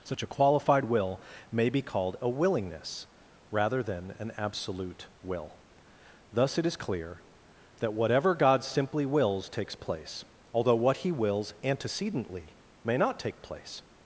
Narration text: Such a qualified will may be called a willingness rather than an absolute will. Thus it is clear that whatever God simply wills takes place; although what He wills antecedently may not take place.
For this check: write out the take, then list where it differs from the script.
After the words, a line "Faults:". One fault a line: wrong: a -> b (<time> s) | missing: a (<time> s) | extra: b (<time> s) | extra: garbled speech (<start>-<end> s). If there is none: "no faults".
Such a qualified will may be called a willingness rather than an absolute will. Thus it is clear that whatever God simply wills takes place; although what He wills antecedently may not take place.
Faults:
no faults